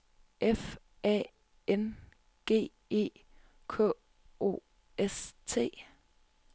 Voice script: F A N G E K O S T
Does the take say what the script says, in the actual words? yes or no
yes